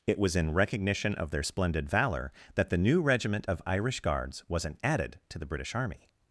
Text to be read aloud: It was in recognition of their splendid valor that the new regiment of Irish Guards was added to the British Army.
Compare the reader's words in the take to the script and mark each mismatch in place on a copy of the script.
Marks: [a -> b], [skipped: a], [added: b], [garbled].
It was in recognition of their splendid valor that the new regiment of Irish Guards [was -> wasn't] added to the British Army.